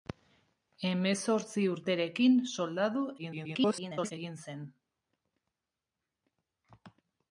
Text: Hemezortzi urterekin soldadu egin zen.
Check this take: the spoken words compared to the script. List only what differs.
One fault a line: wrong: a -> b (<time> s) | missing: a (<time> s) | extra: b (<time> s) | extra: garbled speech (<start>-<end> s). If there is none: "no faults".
extra: garbled speech (3.2-4.1 s)